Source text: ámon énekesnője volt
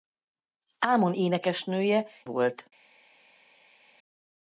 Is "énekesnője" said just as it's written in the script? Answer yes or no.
yes